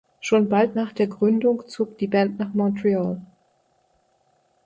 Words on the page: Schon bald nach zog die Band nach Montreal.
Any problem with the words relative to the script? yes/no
yes